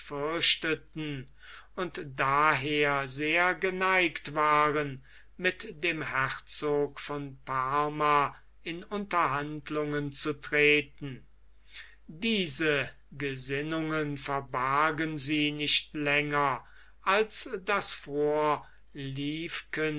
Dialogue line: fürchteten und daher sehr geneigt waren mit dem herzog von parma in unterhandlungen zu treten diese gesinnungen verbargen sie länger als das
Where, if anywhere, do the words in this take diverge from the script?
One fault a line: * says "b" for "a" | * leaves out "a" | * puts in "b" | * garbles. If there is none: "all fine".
* puts in "nicht"